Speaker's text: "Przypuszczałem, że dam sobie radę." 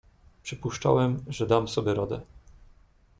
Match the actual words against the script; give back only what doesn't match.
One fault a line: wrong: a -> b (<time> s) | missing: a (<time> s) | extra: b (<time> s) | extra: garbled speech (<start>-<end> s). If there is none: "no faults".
no faults